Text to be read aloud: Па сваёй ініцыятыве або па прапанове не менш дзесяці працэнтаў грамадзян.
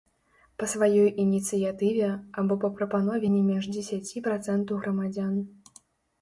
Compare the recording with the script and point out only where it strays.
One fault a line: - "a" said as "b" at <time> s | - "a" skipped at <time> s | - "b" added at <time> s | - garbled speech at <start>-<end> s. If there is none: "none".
none